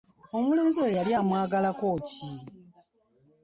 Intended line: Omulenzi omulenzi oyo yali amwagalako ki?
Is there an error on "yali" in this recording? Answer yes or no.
no